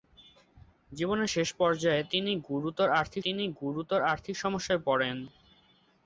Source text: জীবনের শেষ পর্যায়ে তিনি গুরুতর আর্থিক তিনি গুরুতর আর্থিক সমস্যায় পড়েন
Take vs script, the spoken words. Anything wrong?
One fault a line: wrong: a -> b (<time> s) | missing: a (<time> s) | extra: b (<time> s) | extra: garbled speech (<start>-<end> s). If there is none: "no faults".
no faults